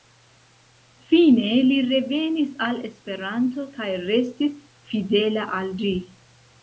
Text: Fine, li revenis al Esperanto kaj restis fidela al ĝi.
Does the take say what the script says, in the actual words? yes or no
yes